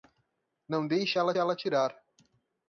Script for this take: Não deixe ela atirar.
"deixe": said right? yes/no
yes